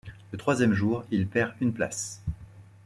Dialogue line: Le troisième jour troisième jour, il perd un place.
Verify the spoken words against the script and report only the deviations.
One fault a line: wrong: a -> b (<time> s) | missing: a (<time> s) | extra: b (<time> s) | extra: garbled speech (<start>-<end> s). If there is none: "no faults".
missing: troisième jour (1.0 s)
wrong: un -> une (1.6 s)